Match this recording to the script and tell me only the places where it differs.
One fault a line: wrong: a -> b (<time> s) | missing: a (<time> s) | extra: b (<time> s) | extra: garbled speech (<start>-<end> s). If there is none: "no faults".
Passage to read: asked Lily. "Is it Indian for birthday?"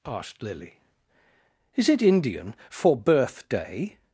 no faults